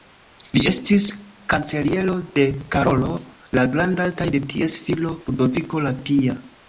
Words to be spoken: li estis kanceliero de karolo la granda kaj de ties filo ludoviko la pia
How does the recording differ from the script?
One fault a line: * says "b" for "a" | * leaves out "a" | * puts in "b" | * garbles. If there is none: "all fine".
all fine